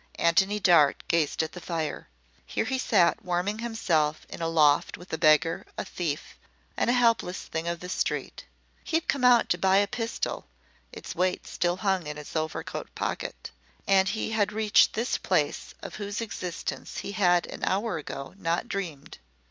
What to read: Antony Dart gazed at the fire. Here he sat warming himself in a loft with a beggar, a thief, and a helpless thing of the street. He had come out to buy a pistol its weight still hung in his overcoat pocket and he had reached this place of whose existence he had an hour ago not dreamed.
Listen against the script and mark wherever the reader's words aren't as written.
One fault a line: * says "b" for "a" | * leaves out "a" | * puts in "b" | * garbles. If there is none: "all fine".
all fine